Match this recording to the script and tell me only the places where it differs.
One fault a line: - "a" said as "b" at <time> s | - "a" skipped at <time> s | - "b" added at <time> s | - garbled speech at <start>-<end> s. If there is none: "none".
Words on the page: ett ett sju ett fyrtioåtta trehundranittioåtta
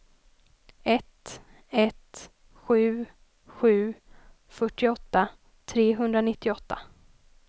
- "ett" said as "sju" at 3.5 s